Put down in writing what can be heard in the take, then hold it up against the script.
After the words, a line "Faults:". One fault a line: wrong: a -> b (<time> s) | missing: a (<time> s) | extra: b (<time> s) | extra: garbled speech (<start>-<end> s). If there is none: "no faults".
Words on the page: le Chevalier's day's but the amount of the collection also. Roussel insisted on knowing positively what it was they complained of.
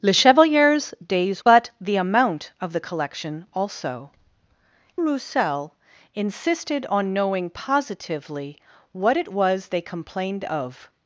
le Chevalier's day's but the amount of the collection also. Roussel insisted on knowing positively what it was they complained of.
Faults:
no faults